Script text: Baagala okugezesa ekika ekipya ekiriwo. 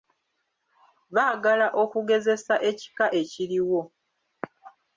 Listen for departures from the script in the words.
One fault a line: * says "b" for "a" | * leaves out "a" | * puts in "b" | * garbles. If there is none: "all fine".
* leaves out "ekipya"